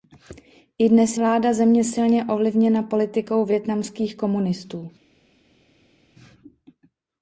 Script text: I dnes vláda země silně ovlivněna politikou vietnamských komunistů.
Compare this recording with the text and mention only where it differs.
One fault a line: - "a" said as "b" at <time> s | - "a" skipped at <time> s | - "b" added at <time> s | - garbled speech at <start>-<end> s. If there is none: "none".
none